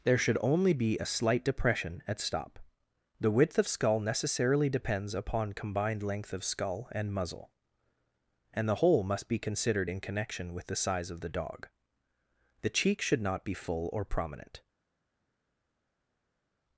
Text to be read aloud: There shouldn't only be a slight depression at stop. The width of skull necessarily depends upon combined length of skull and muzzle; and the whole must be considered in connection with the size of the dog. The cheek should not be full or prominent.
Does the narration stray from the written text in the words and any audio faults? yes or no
yes